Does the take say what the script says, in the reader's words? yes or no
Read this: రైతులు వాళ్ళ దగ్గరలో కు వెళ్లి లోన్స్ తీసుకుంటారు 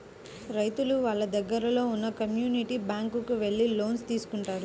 no